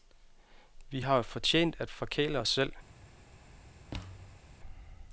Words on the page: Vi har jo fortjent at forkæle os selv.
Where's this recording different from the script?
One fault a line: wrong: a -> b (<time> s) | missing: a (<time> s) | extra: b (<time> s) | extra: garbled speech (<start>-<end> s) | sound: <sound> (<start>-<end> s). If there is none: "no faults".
sound: thud (3.9-4.5 s)